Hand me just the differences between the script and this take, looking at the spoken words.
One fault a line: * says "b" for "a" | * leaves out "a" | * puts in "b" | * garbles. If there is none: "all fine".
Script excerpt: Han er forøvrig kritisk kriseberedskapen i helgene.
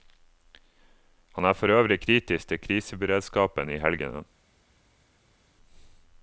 * puts in "til"